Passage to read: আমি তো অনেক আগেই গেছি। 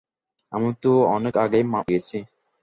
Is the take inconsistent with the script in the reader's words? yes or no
no